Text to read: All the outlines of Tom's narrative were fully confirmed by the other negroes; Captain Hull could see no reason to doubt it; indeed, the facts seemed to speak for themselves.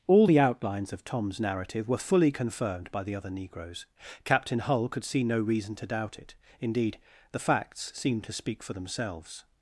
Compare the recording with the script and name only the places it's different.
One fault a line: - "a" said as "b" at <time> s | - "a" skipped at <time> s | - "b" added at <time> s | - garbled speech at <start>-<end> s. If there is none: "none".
none